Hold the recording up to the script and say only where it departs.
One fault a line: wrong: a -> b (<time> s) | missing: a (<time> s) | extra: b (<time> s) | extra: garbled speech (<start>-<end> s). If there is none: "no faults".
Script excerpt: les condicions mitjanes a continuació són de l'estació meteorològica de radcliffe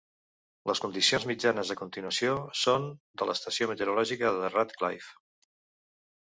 no faults